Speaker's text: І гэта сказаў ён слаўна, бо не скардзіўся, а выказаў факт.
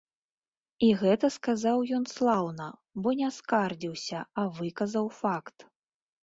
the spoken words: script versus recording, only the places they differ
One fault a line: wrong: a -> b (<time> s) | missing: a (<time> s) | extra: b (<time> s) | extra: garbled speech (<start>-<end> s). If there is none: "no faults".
no faults